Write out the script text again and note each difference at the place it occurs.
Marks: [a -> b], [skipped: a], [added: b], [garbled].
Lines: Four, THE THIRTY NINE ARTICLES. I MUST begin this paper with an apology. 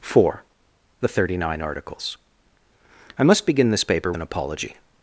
Four, THE THIRTY NINE ARTICLES. I MUST begin this paper [skipped: with] an apology.